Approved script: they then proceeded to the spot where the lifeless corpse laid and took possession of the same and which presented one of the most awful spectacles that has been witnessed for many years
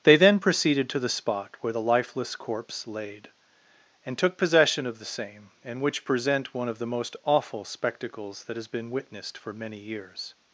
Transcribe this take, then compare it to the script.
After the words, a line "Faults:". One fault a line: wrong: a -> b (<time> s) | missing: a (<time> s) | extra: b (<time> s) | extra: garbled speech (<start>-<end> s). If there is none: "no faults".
they then proceeded to the spot where the lifeless corpse laid and took possession of the same and which present one of the most awful spectacles that has been witnessed for many years
Faults:
wrong: presented -> present (6.0 s)